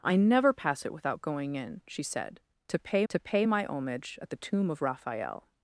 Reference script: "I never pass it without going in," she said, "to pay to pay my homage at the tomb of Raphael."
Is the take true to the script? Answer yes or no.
yes